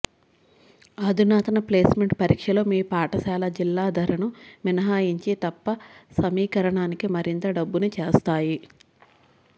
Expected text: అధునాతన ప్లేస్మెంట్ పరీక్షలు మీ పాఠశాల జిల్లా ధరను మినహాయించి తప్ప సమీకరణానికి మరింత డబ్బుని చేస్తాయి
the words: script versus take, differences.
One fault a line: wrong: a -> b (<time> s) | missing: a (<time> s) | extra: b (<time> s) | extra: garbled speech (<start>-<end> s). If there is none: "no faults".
no faults